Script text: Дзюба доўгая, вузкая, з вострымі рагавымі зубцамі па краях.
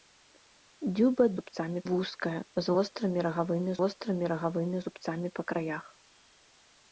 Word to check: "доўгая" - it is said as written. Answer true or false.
false